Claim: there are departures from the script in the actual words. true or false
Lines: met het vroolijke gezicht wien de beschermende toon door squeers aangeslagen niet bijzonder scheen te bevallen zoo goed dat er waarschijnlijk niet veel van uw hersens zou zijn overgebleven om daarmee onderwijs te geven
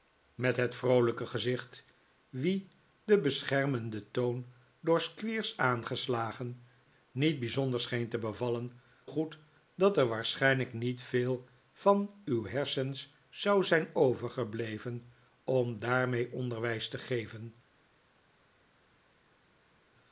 true